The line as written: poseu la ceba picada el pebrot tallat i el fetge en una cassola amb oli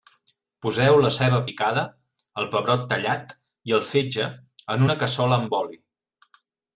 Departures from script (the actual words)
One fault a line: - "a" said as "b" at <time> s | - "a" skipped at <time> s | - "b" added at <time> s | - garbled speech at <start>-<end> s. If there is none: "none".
none